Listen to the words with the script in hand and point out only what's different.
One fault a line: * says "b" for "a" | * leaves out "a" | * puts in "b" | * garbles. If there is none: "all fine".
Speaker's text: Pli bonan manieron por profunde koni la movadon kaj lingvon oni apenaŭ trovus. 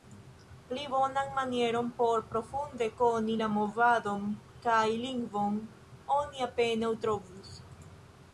all fine